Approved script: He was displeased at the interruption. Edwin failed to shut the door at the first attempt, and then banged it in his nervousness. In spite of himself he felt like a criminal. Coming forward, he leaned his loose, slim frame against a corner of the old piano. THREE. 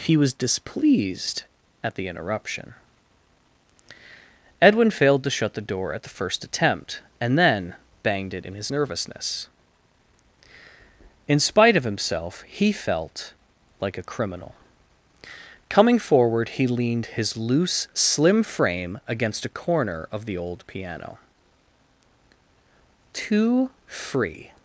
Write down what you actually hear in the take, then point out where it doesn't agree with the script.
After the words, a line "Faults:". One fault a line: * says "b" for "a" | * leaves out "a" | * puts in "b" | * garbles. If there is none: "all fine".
He was displeased at the interruption. Edwin failed to shut the door at the first attempt, and then banged it in his nervousness. In spite of himself he felt like a criminal. Coming forward, he leaned his loose, slim frame against a corner of the old piano. Too free.
Faults:
* says "Too free" for "THREE"